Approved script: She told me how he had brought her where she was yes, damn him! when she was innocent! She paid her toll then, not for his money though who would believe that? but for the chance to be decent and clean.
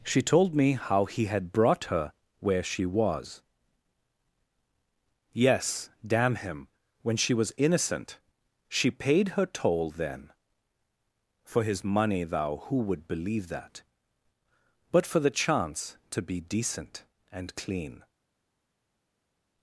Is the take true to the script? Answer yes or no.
no